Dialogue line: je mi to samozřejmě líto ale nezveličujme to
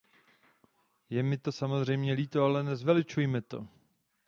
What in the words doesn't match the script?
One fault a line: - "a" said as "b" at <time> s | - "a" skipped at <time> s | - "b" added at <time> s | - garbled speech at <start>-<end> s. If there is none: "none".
none